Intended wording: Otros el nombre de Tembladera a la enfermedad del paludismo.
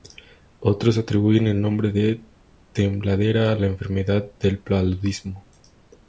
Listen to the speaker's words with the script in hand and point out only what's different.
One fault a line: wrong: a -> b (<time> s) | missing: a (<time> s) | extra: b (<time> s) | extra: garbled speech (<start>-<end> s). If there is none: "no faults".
extra: atribuyen (1.0 s)